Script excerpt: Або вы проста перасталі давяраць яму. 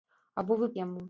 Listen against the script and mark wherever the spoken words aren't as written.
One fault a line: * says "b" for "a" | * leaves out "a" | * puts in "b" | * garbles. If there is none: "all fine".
* leaves out "проста перасталі давяраць"